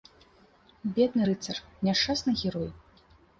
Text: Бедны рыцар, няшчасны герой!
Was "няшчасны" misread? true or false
false